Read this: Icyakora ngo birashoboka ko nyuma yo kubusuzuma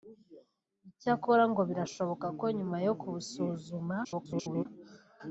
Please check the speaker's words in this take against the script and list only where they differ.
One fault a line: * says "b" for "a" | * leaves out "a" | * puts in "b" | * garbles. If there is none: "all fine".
* garbles